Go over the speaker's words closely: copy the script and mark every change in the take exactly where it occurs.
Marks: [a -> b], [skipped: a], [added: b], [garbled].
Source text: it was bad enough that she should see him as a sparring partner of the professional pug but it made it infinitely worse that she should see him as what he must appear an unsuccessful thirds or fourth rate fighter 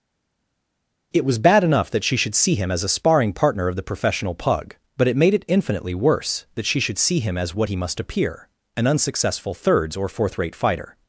it was bad enough that she should see him as a sparring partner of the professional pug but it made it infinitely worse that she should see him as what he must appear an unsuccessful thirds or fourth rate fighter